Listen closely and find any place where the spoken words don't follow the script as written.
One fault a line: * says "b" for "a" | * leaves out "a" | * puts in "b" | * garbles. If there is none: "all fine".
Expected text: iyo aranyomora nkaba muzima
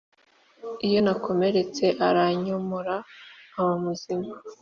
* puts in "nakomeretse"